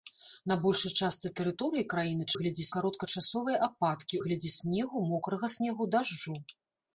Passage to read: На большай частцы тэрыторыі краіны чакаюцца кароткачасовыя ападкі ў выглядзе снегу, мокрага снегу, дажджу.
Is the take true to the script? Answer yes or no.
no